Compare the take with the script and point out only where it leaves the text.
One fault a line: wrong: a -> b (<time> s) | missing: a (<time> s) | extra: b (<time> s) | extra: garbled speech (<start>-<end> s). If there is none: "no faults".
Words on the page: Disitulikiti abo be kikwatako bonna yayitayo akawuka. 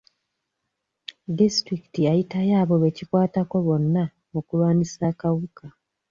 extra: yayitayo (2.1 s)
wrong: yayitayo -> okulwanyisa (4.4 s)